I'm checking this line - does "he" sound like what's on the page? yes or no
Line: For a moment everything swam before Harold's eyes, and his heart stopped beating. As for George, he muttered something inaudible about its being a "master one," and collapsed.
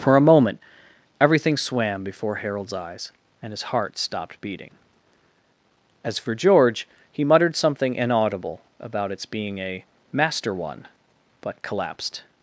yes